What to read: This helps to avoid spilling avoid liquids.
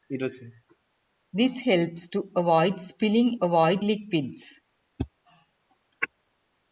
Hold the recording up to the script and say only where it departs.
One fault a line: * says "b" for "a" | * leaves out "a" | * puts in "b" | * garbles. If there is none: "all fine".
all fine